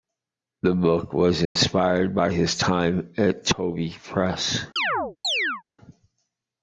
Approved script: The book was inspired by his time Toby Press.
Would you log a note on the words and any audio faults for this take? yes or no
yes